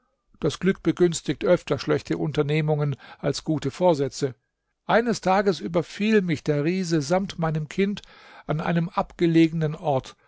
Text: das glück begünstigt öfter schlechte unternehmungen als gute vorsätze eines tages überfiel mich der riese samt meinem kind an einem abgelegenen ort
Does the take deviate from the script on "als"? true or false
false